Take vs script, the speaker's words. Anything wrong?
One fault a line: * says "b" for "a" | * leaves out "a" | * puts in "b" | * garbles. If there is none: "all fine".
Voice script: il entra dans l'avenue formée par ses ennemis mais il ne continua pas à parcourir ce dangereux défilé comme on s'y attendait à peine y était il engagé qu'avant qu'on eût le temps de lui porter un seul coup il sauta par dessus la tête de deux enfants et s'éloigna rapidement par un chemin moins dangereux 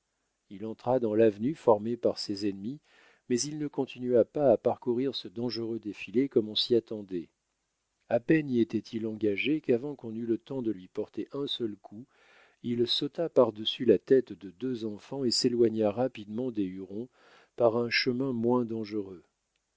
* puts in "des hurons"